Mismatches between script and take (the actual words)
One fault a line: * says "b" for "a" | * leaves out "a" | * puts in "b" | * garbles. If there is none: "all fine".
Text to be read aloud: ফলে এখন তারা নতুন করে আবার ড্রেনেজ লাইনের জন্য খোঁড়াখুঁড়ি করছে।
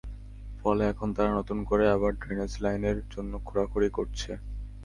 all fine